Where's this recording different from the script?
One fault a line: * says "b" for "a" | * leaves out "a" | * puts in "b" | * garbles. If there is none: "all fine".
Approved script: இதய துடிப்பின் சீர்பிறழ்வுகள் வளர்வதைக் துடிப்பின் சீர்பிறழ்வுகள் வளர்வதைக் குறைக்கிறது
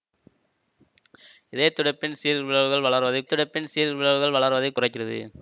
all fine